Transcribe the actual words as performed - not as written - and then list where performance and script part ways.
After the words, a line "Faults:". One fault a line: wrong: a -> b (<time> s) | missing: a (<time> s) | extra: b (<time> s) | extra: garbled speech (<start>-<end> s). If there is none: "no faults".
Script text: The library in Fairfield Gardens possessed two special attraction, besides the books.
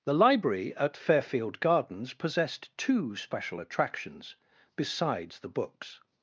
The library at Fairfield Gardens possessed two special attractions, besides the books.
Faults:
wrong: in -> at (0.8 s)
wrong: attraction -> attractions (3.6 s)